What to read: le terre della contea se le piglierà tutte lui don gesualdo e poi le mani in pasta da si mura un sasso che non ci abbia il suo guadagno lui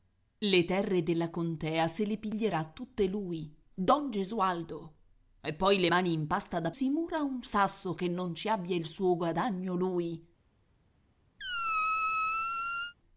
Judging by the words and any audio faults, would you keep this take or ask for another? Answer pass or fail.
fail